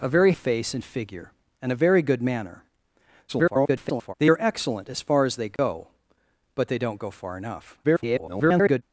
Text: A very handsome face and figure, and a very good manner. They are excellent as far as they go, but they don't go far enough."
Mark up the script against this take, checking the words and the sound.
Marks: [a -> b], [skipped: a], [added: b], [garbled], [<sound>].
A very [skipped: handsome] face and figure, and a very good manner. [garbled] They are excellent as far as they go, [dropout] but they don't go far enough." [garbled]